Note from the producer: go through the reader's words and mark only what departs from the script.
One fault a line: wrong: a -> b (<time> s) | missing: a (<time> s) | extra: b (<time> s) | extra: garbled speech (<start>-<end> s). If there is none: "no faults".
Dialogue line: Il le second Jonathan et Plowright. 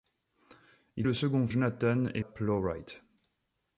no faults